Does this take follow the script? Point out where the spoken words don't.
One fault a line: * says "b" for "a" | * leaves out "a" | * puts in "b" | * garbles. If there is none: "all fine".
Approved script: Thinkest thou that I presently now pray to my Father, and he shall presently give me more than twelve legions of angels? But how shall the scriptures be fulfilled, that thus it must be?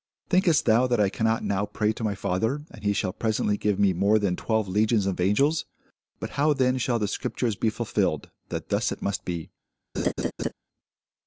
* says "cannot" for "presently"
* puts in "then"